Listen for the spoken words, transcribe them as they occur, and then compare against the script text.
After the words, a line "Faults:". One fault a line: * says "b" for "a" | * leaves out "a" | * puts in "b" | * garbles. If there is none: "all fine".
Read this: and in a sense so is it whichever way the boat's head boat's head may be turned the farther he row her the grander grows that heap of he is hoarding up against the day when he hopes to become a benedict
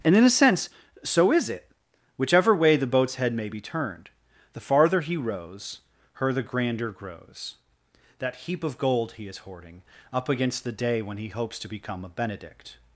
and in a sense so is it whichever way the boat's head may be turned the farther he rows her the grander grows that heap of gold he is hoarding up against the day when he hopes to become a benedict
Faults:
* leaves out "boat's head"
* says "rows" for "row"
* puts in "gold"